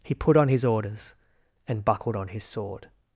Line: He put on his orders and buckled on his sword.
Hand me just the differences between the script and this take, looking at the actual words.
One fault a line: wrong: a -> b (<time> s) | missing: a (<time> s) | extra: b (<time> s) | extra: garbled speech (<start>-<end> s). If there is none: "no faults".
no faults